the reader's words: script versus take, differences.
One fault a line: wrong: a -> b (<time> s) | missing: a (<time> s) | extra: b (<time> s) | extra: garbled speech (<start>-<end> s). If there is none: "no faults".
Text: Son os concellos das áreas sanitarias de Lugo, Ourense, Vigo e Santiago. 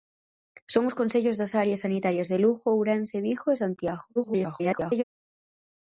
extra: garbled speech (4.2-5.0 s)